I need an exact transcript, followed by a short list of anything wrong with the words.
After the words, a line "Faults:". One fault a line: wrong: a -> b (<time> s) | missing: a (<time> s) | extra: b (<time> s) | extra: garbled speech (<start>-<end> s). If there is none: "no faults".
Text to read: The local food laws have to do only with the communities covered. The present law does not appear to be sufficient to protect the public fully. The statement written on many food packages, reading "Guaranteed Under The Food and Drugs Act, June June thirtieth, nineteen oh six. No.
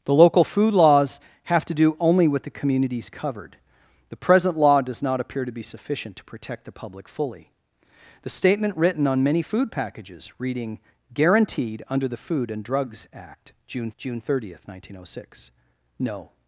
The local food laws have to do only with the communities covered. The present law does not appear to be sufficient to protect the public fully. The statement written on many food packages, reading "Guaranteed Under The Food and Drugs Act, June June thirtieth, nineteen oh six. No.
Faults:
no faults